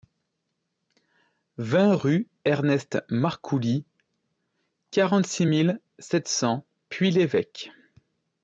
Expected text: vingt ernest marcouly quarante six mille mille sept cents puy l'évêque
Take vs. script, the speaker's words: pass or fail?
fail